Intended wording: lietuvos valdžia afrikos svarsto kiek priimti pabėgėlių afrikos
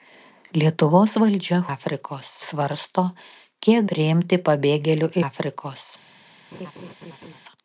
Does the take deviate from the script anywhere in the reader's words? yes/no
no